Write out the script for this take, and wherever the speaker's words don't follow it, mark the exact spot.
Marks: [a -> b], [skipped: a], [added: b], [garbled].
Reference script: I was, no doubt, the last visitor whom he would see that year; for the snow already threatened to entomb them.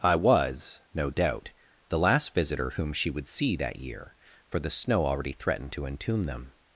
I was, no doubt, the last visitor whom [he -> she] would see that year; for the snow already threatened to entomb them.